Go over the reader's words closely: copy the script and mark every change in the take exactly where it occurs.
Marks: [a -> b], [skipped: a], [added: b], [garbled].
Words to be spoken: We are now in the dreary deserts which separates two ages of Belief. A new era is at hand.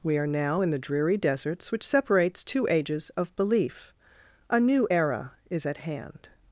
We are now in the dreary deserts which separates two ages of Belief. A new era is at hand.